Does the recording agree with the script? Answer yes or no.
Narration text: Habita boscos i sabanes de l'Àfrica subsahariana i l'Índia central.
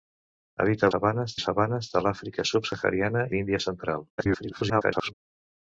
no